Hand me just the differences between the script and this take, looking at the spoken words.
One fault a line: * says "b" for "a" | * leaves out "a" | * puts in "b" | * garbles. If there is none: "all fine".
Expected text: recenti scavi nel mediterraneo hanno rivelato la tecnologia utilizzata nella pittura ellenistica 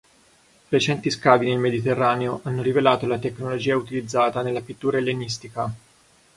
all fine